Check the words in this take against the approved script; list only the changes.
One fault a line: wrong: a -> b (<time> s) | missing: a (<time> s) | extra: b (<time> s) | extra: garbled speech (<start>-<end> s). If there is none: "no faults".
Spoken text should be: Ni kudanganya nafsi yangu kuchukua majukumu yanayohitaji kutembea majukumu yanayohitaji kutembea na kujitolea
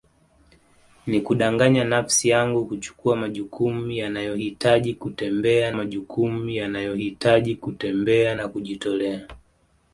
no faults